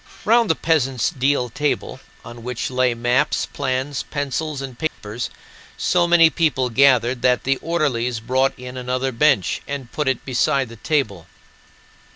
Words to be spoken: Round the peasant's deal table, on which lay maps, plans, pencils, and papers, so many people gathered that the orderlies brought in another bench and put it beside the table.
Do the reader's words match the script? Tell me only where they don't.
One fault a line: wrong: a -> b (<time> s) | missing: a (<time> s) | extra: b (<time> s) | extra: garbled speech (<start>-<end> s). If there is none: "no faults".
no faults